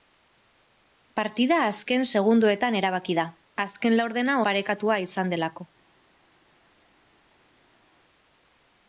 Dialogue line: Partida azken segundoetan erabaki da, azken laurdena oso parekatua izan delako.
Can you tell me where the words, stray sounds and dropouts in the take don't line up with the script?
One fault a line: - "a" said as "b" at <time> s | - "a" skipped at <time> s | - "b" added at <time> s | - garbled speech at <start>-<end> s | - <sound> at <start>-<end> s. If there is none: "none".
- "oso" skipped at 4.4 s